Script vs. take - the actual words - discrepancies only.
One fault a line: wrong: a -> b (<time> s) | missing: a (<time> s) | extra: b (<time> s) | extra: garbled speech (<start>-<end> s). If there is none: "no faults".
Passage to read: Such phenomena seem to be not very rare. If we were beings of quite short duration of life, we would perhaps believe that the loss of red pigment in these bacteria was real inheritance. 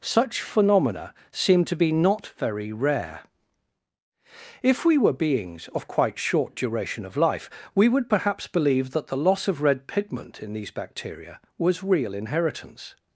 no faults